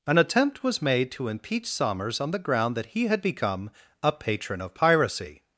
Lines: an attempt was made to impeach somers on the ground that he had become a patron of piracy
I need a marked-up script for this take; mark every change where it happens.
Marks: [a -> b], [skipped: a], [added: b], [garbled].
an attempt was made to impeach somers on the ground that he had become a patron of piracy